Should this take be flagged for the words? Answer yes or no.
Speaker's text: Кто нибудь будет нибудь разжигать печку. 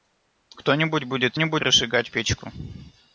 no